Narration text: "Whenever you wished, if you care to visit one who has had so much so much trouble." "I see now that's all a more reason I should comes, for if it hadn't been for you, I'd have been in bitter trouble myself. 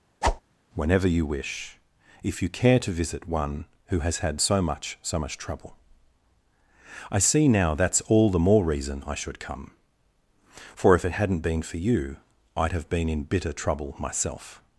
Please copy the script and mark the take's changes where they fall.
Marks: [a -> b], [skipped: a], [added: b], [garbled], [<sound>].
[whoosh] "Whenever you [wished, -> wish] if you care to visit one who has had so much so much trouble." "I see now that's all [a -> the] more reason I should [comes, -> come] for if it hadn't been for you, I'd have been in bitter trouble myself.